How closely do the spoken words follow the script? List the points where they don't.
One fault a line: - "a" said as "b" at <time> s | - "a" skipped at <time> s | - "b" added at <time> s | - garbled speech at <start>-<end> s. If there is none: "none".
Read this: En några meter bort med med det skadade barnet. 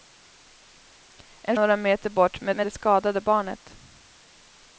none